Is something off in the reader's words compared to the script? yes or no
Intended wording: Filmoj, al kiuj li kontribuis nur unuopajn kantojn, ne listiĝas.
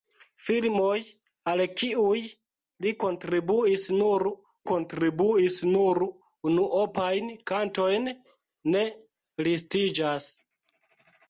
yes